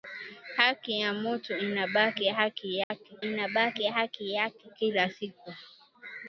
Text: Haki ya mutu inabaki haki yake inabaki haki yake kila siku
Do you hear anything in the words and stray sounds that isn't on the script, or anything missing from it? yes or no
yes